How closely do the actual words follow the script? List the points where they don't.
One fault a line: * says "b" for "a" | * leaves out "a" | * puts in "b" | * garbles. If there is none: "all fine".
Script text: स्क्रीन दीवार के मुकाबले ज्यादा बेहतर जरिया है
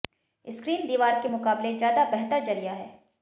all fine